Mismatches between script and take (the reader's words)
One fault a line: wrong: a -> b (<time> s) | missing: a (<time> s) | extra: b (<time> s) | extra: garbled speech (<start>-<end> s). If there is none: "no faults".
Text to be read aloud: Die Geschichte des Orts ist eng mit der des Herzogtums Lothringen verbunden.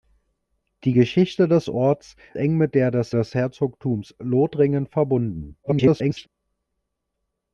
missing: ist (2.2 s)
extra: des (3.1 s)
extra: garbled speech (5.6-6.3 s)